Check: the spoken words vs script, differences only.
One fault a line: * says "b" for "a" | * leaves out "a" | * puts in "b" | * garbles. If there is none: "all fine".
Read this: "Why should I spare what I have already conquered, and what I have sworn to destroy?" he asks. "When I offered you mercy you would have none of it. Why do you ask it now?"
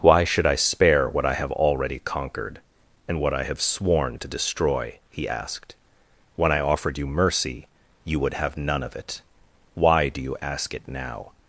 * says "asked" for "asks"